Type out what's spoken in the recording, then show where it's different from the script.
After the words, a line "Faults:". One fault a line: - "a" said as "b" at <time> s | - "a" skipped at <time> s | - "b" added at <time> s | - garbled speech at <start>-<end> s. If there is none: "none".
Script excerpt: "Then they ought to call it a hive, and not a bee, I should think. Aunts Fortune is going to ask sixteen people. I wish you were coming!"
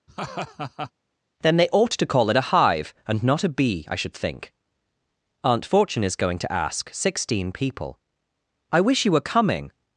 "Then they ought to call it a hive, and not a bee, I should think. Aunt Fortune is going to ask sixteen people. I wish you were coming!"
Faults:
- "Aunts" said as "Aunt" at 5.4 s